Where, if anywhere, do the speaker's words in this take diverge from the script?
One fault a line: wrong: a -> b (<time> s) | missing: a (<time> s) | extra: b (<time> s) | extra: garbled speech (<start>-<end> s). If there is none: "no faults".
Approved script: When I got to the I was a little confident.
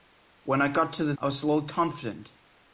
no faults